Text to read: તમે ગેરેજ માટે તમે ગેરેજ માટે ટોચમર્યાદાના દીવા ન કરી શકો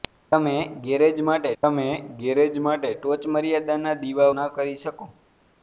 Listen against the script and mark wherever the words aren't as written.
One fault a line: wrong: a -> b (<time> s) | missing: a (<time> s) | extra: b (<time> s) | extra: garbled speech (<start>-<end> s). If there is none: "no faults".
no faults